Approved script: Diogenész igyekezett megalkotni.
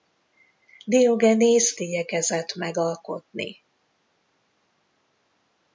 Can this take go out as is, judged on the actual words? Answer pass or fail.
pass